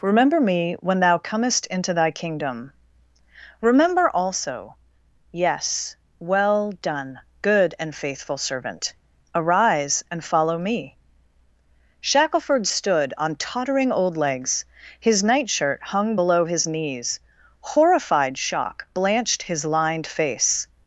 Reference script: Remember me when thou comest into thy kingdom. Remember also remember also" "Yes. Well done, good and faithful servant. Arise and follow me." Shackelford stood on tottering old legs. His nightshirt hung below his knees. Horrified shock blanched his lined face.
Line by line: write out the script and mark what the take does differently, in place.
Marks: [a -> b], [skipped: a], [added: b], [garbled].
Remember me when thou comest into thy kingdom. Remember also [skipped: remember also"] "Yes. Well done, good and faithful servant. Arise and follow me." Shackelford stood on tottering old legs. His nightshirt hung below his knees. Horrified shock blanched his lined face.